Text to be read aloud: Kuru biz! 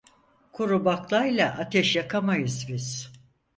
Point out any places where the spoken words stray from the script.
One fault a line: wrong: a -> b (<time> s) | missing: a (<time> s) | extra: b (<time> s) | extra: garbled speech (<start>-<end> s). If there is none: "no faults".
extra: baklayla ateş yakamayız (0.8 s)